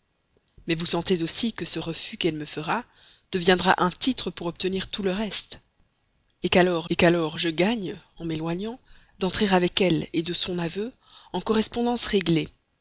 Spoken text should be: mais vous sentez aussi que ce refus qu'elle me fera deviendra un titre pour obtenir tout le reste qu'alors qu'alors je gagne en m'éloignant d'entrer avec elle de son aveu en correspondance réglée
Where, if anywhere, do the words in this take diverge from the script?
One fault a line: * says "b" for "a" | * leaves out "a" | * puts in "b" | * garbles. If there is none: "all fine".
all fine